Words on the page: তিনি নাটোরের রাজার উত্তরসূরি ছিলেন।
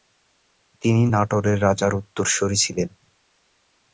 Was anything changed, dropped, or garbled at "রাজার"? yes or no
no